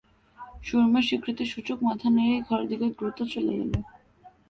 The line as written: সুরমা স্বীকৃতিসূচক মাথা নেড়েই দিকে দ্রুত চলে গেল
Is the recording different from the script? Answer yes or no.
yes